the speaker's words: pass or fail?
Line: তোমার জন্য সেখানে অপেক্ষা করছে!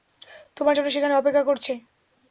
pass